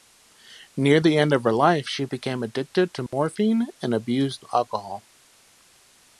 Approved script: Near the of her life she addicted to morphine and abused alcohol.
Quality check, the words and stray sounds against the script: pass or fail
fail